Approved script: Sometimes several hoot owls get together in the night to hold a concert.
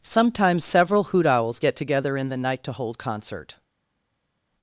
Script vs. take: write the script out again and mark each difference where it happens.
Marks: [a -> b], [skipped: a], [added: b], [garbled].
Sometimes several hoot owls get together in the night to hold [skipped: a] concert.